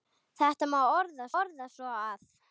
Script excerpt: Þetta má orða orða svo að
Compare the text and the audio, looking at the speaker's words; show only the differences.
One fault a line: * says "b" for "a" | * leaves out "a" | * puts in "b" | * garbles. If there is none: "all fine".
all fine